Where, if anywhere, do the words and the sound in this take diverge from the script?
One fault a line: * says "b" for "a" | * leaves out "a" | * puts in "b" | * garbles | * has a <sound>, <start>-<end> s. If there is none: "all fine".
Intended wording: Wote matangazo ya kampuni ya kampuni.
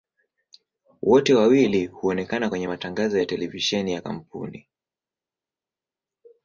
* puts in "wawili huonekana kwenye"
* says "televisheni" for "kampuni"